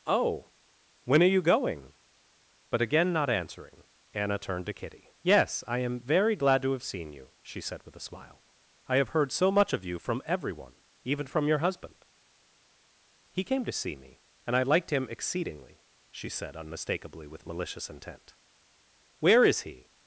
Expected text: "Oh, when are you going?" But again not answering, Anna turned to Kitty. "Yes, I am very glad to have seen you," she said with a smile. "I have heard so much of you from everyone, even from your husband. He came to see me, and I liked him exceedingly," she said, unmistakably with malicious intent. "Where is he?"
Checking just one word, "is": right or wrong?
right